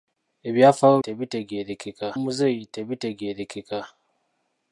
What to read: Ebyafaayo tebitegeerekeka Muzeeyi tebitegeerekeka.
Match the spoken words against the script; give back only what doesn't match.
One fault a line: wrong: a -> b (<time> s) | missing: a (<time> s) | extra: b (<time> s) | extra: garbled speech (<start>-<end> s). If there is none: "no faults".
no faults